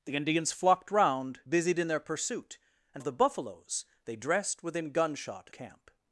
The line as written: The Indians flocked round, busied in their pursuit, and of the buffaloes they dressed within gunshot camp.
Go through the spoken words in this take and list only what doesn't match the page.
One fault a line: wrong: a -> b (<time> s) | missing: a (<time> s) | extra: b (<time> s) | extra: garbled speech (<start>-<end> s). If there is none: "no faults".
no faults